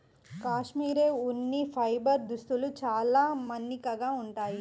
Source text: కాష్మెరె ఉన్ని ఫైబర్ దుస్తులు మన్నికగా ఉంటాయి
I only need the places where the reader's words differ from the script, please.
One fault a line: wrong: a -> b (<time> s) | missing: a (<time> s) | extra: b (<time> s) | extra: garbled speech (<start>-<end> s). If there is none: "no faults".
extra: చాలా (2.8 s)